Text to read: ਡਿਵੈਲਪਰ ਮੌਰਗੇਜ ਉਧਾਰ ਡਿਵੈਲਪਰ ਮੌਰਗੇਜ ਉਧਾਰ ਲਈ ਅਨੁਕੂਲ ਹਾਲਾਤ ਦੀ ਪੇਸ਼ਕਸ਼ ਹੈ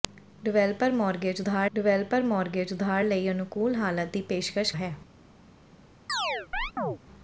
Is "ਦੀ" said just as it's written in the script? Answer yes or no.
yes